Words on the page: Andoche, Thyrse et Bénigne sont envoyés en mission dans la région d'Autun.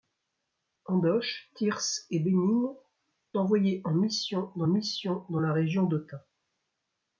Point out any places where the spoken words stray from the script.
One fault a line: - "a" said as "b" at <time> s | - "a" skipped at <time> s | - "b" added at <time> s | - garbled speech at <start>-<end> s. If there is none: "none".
- "sont" skipped at 2.7 s
- "mission dans" added at 4.7 s